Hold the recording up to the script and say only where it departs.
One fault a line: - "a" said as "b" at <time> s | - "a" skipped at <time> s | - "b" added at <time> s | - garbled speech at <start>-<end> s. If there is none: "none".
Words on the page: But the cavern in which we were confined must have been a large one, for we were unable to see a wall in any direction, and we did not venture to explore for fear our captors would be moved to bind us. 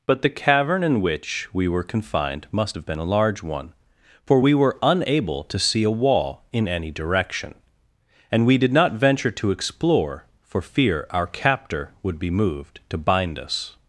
- "captors" said as "captor" at 11.3 s